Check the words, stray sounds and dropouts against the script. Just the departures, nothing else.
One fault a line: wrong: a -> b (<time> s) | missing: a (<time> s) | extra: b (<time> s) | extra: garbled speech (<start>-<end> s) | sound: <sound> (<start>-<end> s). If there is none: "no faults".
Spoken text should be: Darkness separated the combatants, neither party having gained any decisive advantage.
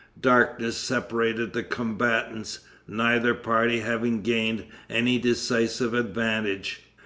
no faults